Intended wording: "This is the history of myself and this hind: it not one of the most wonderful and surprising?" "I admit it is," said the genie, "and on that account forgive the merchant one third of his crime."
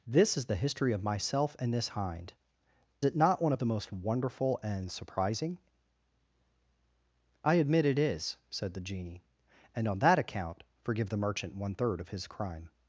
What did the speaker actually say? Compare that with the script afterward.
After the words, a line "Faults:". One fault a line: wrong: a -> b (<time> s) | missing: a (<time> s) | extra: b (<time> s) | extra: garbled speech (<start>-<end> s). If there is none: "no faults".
"This is the history of myself and this hind: it not one of the most wonderful and surprising?" "I admit it is," said the genie, "and on that account forgive the merchant one third of his crime."
Faults:
no faults